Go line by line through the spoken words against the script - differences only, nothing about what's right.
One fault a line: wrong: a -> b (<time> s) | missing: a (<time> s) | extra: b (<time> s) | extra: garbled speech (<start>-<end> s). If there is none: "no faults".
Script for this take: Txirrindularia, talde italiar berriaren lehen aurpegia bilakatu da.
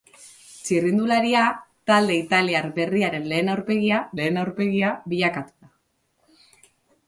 extra: lehen aurpegia (4.2 s)